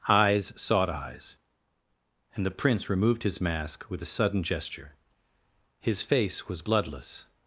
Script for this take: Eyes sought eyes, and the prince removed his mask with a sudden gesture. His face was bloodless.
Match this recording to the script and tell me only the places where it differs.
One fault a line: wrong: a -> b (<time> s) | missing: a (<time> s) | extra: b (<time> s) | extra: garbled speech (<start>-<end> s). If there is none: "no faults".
no faults